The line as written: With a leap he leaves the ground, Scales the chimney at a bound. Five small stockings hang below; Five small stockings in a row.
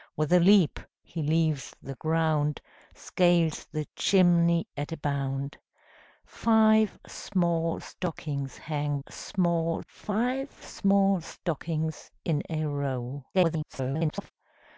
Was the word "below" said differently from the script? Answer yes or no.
yes